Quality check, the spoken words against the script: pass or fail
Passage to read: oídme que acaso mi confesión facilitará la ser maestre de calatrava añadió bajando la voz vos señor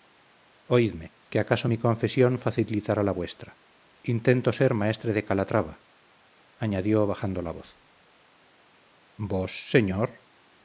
fail